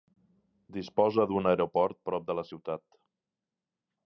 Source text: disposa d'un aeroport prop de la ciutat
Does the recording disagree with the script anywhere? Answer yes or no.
no